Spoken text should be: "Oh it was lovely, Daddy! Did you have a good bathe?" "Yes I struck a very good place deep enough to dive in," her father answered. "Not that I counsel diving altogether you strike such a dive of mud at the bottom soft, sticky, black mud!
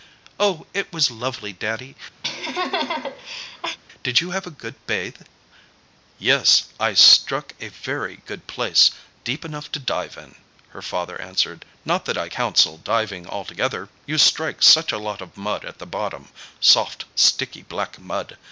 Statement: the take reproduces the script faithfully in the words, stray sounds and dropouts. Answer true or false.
false